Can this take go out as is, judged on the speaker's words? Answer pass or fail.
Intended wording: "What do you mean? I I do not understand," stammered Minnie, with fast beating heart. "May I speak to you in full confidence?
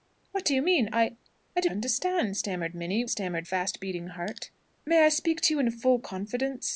fail